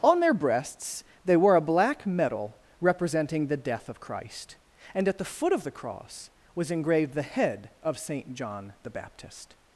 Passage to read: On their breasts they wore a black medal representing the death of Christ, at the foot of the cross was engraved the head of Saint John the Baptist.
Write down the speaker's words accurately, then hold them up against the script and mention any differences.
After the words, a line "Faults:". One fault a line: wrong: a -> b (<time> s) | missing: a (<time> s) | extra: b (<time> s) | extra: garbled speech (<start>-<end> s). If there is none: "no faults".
On their breasts they wore a black medal representing the death of Christ, and at the foot of the cross was engraved the head of Saint John the Baptist.
Faults:
extra: and (4.9 s)